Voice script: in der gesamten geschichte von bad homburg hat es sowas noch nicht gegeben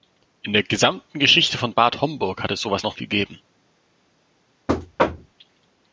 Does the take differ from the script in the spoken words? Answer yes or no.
yes